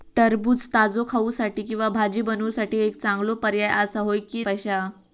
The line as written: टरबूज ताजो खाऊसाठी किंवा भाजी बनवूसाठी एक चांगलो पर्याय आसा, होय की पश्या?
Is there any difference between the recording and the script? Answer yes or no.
no